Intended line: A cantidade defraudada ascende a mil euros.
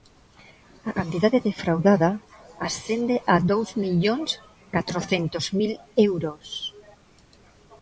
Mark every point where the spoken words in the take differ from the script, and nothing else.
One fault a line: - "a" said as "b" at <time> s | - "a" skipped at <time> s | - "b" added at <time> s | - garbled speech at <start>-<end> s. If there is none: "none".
- "dous millóns catrocentos" added at 3.5 s